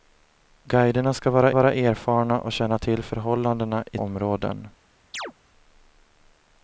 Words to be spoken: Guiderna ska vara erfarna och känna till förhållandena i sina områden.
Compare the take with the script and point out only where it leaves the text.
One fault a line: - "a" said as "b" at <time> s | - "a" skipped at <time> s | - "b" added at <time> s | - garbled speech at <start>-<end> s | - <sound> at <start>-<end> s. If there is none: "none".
- "vara" added at 1.5 s
- "sina" skipped at 4.0 s
- chirp at 5.1-5.3 s